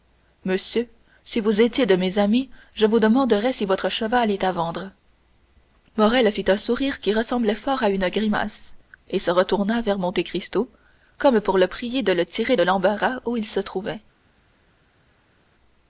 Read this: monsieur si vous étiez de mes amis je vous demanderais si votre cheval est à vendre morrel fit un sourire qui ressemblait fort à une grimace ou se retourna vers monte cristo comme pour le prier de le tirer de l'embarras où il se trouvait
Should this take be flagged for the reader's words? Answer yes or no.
yes